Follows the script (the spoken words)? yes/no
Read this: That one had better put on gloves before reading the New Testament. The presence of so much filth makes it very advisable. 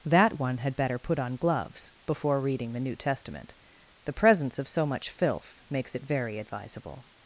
yes